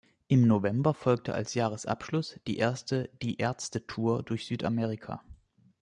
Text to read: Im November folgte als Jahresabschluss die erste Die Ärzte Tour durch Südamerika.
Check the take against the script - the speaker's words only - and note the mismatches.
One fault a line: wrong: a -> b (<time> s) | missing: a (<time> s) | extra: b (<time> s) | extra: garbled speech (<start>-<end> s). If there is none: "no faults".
no faults